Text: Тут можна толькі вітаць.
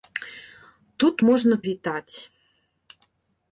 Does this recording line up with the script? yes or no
no